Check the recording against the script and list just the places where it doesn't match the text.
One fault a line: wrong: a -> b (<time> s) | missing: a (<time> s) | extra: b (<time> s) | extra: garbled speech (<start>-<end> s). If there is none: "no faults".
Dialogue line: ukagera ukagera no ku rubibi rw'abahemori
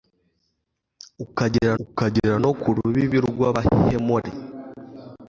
no faults